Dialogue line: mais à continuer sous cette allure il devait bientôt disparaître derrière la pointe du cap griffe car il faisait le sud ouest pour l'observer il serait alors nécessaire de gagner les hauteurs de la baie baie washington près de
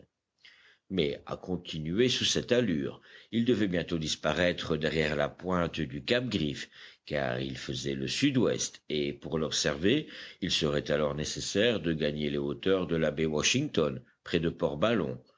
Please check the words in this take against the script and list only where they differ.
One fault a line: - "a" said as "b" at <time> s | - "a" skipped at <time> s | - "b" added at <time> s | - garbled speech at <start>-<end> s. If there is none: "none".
- "et" added at 8.9 s
- "baie" skipped at 13.2 s